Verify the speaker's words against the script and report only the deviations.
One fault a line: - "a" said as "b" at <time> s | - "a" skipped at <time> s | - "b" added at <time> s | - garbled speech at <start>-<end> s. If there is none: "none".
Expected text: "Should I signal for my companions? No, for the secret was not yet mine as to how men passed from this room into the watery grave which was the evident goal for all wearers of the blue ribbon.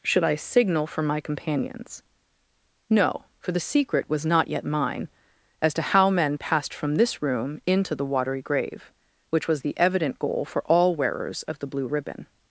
none